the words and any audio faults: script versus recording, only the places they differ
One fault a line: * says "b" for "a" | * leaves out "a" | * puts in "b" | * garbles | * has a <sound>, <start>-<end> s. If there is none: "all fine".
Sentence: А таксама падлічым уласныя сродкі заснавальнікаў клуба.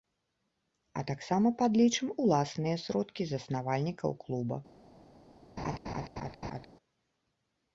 * has a laugh, 5.6-6.7 s